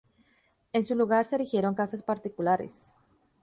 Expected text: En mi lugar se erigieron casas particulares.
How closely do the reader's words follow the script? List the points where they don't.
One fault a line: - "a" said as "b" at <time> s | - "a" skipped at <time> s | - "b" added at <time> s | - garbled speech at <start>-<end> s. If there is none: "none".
- "mi" said as "su" at 0.8 s